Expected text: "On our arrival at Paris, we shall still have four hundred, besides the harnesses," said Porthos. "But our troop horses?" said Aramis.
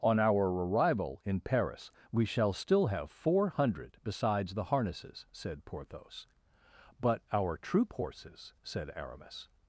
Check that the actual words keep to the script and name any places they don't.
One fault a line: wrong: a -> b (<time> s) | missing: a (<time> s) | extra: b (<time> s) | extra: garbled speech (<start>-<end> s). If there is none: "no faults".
wrong: at -> in (1.2 s)